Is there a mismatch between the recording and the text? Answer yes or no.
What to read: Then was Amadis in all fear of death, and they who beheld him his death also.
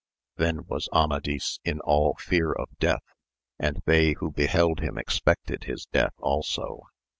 yes